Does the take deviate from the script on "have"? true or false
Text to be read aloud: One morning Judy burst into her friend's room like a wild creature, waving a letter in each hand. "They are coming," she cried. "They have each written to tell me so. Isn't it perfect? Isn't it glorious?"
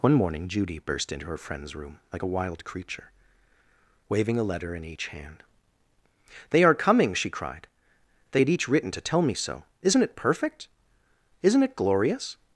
true